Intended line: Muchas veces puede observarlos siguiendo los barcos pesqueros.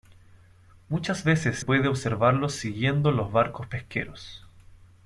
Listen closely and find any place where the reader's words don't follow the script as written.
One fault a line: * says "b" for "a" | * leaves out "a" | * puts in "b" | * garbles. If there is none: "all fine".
all fine